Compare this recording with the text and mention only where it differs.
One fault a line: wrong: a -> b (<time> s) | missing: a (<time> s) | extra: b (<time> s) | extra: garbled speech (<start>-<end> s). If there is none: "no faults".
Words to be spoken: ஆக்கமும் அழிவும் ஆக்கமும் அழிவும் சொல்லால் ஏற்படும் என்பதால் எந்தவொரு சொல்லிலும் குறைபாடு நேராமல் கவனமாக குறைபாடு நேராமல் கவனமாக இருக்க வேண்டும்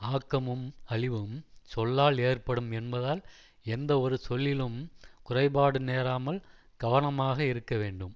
missing: ஆக்கமும் அழிவும் (1.4 s)
missing: குறைபாடு நேராமல் கவனமாக (7.4 s)